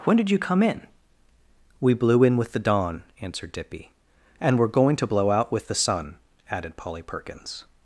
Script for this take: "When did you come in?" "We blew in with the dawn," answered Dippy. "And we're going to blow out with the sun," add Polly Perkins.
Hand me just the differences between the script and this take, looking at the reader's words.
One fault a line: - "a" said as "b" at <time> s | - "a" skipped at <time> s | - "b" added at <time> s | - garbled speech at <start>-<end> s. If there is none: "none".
- "add" said as "added" at 6.5 s